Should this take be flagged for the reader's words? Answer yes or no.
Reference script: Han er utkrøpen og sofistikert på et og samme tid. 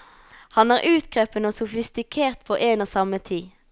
yes